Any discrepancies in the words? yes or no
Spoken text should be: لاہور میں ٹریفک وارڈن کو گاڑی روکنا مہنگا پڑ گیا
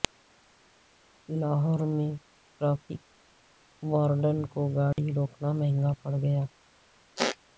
no